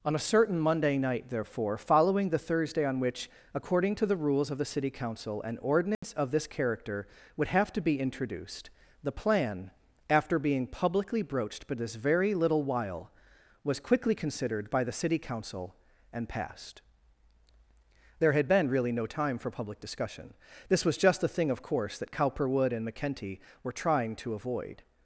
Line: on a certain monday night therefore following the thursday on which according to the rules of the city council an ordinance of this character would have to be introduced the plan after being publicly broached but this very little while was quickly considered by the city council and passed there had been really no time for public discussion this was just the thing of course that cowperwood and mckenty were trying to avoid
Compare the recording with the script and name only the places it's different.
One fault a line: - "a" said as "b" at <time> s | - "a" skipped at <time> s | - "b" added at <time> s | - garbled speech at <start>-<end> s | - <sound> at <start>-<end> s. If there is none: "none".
- dropout at 5.9-6.0 s